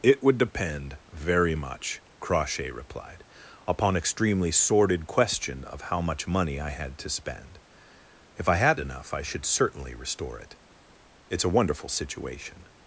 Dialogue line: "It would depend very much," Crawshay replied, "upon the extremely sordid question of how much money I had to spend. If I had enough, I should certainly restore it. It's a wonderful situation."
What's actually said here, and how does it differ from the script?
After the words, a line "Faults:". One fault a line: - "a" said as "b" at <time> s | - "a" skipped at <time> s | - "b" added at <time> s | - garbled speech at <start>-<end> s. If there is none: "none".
"It would depend very much," Crawshay replied, "upon extremely sordid question of how much money I had to spend. If I had enough, I should certainly restore it. It's a wonderful situation."
Faults:
- "the" skipped at 4.0 s